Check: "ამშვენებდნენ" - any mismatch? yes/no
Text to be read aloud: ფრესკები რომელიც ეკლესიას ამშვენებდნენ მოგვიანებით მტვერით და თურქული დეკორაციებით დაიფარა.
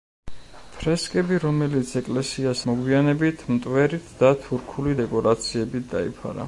yes